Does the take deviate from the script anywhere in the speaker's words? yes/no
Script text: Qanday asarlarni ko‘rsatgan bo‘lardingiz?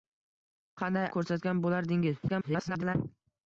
yes